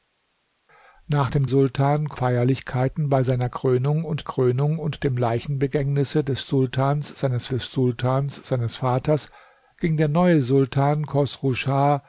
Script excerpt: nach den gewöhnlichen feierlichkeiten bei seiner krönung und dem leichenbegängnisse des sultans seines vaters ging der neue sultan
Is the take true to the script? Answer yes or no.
no